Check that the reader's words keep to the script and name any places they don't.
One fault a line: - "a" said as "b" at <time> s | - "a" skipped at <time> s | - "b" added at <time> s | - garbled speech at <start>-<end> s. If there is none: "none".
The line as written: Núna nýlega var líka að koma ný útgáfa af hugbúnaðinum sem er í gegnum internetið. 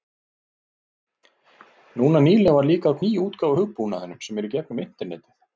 - "koma" skipped at 3.0 s